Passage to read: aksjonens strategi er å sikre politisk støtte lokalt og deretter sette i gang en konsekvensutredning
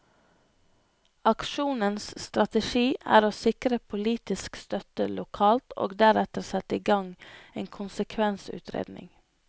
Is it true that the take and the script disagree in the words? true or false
false